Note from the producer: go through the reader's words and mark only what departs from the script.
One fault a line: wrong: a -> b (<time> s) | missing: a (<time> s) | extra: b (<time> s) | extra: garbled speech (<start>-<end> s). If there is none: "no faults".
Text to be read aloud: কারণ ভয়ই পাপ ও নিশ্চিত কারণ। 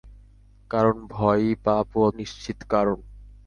no faults